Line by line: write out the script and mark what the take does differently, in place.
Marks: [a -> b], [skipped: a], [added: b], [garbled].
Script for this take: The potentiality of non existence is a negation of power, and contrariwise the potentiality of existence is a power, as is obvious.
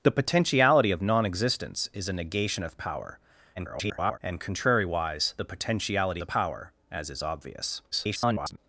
The potentiality of non existence is a negation of power, [garbled] and contrariwise the potentiality [skipped: of existence is] a power, as is obvious. [garbled]